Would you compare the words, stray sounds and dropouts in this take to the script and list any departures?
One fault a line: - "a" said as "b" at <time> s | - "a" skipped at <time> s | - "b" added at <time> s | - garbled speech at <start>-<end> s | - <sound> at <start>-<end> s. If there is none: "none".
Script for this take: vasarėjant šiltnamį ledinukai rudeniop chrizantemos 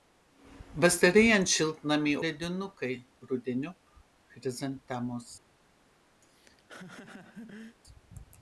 - laugh at 6.2-7.8 s